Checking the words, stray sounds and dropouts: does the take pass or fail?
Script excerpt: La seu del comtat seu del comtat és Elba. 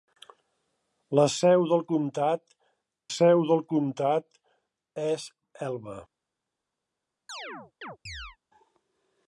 fail